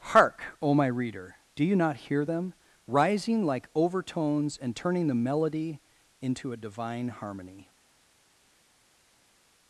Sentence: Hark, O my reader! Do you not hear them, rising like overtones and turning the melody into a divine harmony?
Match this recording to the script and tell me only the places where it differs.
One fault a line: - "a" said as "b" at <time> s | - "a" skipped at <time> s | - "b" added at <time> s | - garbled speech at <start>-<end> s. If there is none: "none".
none